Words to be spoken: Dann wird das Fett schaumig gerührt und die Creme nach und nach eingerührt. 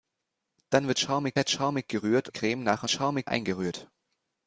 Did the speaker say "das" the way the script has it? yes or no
no